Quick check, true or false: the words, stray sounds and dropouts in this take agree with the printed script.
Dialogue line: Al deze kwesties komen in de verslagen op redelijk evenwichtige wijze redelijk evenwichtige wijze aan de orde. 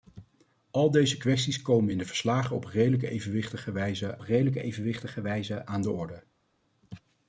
true